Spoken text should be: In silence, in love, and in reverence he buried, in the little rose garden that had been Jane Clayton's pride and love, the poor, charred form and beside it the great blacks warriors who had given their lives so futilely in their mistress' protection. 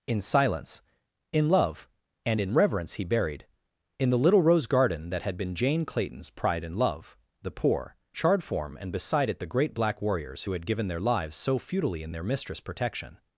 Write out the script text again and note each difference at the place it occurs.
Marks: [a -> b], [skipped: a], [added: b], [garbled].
In silence, in love, and in reverence he buried, in the little rose garden that had been Jane Clayton's pride and love, the poor, charred form and beside it the great [blacks -> black] warriors who had given their lives so futilely in their mistress' protection.